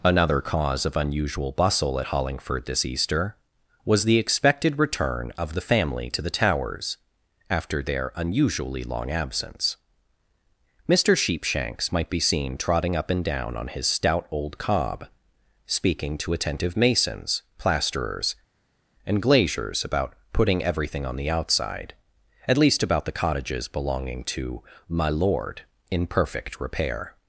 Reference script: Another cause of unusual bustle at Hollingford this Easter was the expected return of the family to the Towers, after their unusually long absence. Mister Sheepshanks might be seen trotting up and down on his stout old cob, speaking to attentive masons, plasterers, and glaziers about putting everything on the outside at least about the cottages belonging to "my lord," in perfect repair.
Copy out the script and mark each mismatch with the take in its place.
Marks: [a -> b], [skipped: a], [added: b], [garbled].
Another cause of unusual bustle at Hollingford this Easter was the expected return of the family to the Towers, after their unusually long absence. Mister Sheepshanks might be seen trotting up and down on his stout old cob, speaking to attentive masons, plasterers, and glaziers about putting everything on the outside at least about the cottages belonging to "my lord," in perfect repair.